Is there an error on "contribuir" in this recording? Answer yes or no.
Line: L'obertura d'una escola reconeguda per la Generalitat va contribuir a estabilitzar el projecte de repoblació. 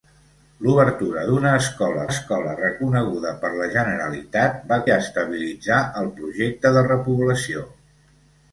yes